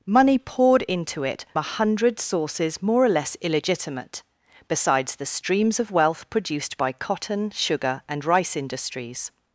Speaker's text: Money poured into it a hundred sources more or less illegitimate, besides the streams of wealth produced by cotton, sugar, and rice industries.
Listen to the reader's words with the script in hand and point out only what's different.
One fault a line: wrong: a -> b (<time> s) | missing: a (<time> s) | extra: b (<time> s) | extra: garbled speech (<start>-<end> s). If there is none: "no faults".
no faults